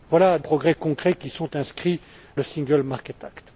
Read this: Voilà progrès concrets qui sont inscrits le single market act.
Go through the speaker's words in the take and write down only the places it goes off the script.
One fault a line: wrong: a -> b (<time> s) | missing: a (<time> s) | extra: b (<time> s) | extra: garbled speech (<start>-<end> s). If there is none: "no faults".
no faults